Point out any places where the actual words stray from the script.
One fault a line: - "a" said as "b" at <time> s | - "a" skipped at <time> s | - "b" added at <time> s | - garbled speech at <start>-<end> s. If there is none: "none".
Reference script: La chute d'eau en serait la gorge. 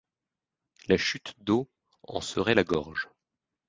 none